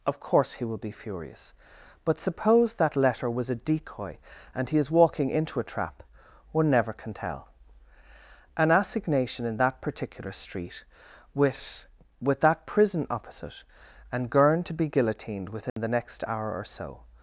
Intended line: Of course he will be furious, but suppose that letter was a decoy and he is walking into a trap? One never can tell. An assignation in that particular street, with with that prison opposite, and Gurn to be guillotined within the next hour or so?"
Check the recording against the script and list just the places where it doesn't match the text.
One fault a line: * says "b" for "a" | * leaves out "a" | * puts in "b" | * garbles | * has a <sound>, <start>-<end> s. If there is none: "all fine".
* has a dropout, 15.7-15.8 s